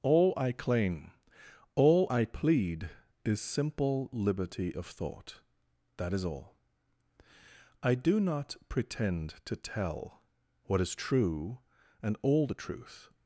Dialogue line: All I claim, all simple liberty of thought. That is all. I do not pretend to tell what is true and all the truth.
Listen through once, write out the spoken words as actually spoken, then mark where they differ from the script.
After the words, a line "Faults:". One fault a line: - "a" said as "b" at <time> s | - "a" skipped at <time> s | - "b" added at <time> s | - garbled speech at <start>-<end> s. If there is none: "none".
All I claim, all I plead is simple liberty of thought. That is all. I do not pretend to tell what is true and all the truth.
Faults:
- "I plead is" added at 2.1 s